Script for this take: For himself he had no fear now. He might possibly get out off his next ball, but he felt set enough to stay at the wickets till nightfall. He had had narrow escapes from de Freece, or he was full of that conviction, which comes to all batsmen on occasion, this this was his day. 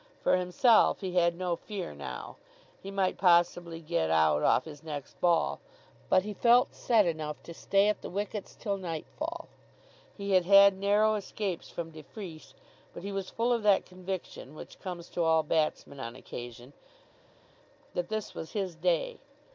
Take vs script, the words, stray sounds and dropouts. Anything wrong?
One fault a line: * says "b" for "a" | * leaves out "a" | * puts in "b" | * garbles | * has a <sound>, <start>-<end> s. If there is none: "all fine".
* says "but" for "or"
* says "that" for "this"